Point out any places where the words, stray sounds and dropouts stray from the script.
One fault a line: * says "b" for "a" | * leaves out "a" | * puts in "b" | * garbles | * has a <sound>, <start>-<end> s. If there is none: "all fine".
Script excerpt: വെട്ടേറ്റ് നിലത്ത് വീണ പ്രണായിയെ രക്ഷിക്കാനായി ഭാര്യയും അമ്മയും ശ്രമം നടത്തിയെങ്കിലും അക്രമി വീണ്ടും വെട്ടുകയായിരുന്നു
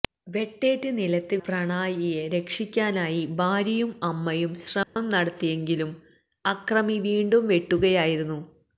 * leaves out "വീണ"
* has a dropout, 4.8-5.0 s